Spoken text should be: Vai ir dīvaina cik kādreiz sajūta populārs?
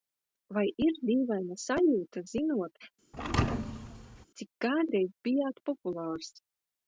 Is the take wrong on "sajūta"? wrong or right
wrong